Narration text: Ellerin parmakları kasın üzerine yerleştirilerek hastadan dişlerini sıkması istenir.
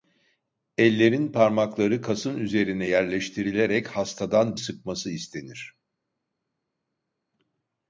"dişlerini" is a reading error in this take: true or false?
true